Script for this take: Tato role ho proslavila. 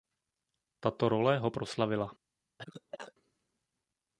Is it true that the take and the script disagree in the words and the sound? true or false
true